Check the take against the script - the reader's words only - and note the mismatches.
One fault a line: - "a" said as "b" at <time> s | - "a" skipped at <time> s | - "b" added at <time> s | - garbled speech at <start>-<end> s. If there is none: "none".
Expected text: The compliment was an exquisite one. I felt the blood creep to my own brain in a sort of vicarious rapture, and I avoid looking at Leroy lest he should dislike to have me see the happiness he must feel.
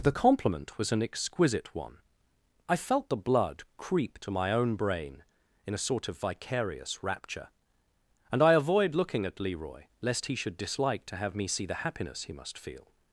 none